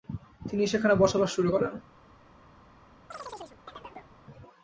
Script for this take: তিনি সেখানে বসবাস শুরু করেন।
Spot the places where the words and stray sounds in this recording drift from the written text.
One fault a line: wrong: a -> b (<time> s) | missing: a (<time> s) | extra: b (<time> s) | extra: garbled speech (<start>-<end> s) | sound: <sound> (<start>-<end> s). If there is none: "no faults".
sound: chirp (3.1-4.2 s)